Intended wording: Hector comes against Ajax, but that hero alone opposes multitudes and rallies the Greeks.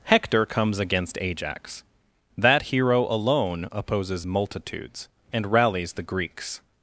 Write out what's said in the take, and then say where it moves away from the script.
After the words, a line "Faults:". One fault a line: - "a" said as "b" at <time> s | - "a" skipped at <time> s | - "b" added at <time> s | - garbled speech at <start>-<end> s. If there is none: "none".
Hector comes against Ajax, that hero alone opposes multitudes and rallies the Greeks.
Faults:
- "but" skipped at 1.8 s